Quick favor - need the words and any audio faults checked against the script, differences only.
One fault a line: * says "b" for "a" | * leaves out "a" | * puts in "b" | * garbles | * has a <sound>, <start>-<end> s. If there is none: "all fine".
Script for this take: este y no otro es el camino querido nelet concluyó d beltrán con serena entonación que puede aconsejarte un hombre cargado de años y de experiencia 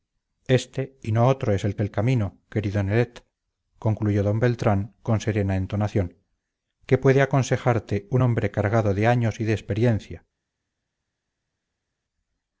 * puts in "el"